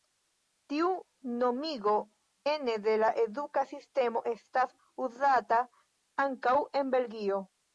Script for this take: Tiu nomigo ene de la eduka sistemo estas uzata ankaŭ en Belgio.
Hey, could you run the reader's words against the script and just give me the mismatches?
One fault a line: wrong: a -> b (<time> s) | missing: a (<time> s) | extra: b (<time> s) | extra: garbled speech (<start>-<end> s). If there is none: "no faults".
no faults